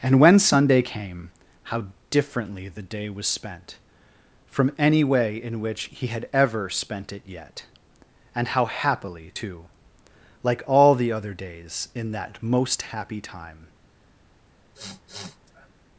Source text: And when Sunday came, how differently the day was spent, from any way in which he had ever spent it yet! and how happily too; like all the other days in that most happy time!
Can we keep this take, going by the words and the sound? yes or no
no